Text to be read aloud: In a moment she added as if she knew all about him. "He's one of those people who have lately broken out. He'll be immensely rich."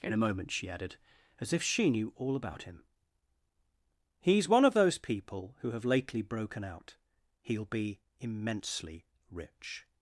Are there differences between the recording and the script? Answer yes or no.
no